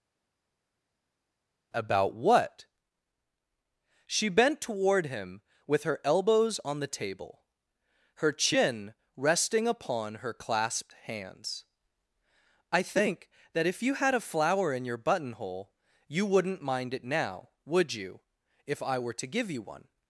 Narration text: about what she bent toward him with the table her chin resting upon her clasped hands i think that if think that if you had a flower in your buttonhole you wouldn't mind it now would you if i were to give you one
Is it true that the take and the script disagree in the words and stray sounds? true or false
true